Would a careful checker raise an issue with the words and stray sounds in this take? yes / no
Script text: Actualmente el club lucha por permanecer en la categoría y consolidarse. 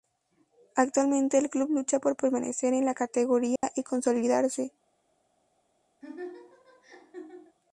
yes